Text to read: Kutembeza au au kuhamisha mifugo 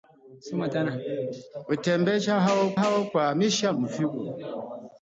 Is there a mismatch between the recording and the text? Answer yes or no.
no